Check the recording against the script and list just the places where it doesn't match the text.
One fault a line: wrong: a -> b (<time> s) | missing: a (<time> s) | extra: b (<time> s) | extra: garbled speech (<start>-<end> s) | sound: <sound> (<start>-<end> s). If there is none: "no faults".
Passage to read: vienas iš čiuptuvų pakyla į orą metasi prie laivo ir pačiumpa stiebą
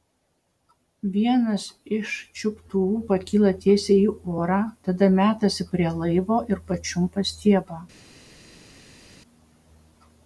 extra: tiesiai (3.6 s)
extra: tada (4.9 s)